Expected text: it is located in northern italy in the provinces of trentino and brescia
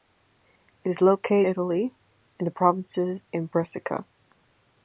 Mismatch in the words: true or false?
true